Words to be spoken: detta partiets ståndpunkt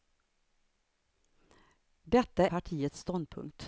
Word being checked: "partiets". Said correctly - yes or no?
yes